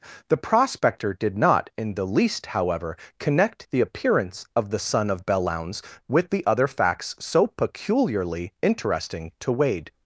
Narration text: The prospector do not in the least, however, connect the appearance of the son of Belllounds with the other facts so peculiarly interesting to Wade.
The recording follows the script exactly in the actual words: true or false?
false